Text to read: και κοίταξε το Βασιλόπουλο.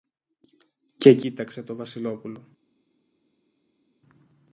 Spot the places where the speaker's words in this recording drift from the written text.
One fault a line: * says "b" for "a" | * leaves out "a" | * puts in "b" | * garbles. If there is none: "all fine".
all fine